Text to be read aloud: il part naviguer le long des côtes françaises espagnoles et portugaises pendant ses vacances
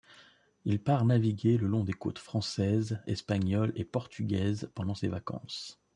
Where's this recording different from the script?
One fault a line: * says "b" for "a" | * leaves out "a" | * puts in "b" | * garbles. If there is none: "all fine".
all fine